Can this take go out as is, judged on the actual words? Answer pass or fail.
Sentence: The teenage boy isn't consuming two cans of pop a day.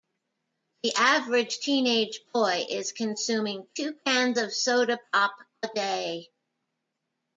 fail